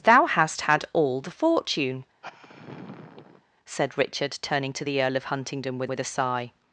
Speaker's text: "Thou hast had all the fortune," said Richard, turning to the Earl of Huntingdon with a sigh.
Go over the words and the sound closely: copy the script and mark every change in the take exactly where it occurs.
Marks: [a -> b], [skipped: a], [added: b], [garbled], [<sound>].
"Thou hast had all the fortune," [sigh] said Richard, turning to the Earl of Huntingdon with [added: with] a sigh.